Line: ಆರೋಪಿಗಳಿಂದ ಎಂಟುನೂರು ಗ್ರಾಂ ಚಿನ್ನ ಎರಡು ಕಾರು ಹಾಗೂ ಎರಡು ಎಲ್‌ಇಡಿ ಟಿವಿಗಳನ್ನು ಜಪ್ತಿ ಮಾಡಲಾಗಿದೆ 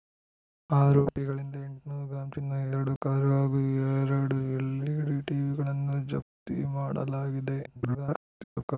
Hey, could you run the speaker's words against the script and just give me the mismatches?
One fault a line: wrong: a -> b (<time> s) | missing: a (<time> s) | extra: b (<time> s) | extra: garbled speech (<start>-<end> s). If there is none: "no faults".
extra: garbled speech (7.7-8.8 s)